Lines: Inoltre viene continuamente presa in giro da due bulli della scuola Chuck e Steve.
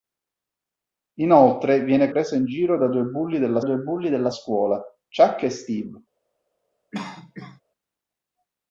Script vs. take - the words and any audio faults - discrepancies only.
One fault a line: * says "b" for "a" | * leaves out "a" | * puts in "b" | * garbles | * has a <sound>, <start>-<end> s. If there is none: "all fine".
* leaves out "continuamente"
* puts in "due bulli della"
* has a cough, 6.9-7.6 s